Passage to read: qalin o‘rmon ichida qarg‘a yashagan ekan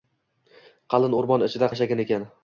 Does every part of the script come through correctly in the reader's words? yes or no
no